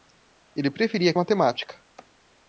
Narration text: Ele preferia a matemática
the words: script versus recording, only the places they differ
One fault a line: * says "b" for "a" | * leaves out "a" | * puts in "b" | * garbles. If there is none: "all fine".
all fine